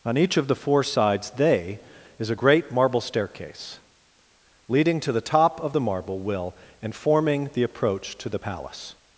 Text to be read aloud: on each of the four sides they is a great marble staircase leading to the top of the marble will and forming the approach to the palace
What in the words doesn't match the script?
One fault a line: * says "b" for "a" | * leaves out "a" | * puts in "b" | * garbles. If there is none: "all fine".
all fine